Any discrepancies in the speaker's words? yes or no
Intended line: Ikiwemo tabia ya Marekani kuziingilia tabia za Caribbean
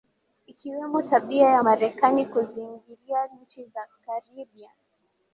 yes